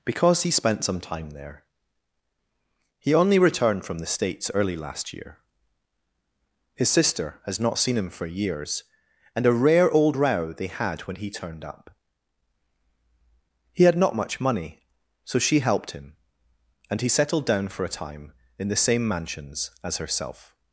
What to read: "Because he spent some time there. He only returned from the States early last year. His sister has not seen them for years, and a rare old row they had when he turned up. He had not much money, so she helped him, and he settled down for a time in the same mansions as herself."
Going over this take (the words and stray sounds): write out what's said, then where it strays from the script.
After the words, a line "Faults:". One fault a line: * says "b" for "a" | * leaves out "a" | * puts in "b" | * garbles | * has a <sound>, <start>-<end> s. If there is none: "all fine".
"Because he spent some time there. He only returned from the States early last year. His sister has not seen him for years, and a rare old row they had when he turned up. He had not much money, so she helped him, and he settled down for a time in the same mansions as herself."
Faults:
* says "him" for "them"